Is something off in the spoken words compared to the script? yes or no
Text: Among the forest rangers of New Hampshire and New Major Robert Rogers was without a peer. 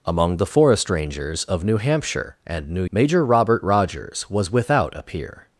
no